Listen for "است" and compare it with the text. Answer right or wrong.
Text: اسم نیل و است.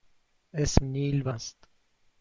right